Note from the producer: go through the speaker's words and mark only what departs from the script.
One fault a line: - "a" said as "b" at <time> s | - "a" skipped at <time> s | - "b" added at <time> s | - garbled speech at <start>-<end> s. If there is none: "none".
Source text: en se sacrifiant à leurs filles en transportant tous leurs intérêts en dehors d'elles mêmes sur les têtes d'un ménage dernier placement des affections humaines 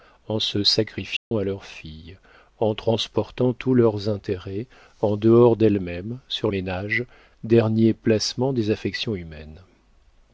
- "les têtes d'un" skipped at 6.5 s